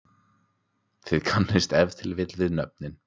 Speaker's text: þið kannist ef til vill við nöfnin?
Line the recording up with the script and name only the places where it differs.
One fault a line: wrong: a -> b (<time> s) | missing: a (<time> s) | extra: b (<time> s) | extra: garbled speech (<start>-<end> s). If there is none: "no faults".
no faults